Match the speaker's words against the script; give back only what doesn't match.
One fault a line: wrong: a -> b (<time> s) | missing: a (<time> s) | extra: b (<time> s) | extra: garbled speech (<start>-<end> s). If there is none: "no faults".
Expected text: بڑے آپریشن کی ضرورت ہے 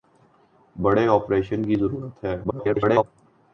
extra: garbled speech (2.4-3.0 s)